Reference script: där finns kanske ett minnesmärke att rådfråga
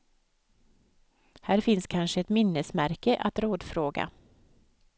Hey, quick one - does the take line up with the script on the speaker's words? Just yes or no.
no